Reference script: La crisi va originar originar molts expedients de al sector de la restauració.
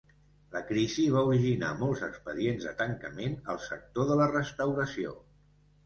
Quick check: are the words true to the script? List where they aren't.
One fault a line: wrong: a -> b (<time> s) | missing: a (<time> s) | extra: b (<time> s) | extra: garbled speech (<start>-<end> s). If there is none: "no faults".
missing: originar (1.7 s)
extra: tancament (2.8 s)